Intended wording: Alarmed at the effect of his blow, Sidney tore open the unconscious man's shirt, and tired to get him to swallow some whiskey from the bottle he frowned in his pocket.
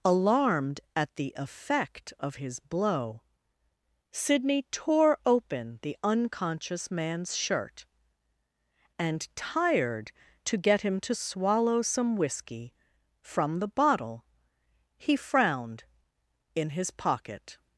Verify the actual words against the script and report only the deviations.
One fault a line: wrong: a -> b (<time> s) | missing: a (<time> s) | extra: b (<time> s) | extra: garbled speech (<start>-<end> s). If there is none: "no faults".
no faults